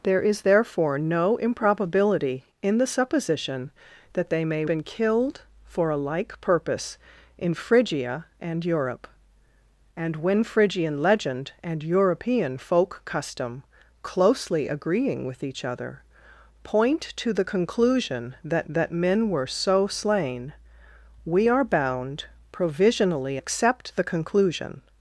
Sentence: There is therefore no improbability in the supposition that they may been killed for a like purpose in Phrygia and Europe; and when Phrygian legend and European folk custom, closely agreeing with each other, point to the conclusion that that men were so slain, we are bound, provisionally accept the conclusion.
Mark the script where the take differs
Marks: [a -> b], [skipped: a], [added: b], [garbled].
There is therefore no improbability in the supposition that they may been killed for a like purpose in Phrygia and Europe; and when Phrygian legend and European folk custom, closely agreeing with each other, point to the conclusion that that men were so slain, we are bound, provisionally accept the conclusion.